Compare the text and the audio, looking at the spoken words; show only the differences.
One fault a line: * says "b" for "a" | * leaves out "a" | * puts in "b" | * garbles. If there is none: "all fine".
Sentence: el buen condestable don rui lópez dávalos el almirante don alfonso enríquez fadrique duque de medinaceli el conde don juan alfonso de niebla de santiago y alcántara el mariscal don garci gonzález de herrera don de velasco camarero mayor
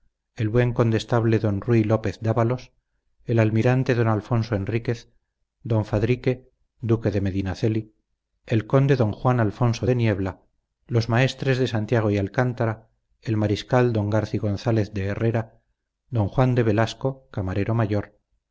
* puts in "don"
* puts in "los maestres"
* puts in "juan"